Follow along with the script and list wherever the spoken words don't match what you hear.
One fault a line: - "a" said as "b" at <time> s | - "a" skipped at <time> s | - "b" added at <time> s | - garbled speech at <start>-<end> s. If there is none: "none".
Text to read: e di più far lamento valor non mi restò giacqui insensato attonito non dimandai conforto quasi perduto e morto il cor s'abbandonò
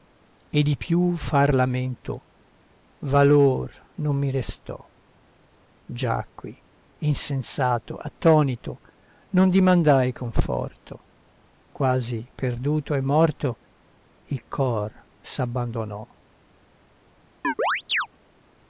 none